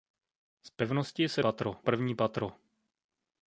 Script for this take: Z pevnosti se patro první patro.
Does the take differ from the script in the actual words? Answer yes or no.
no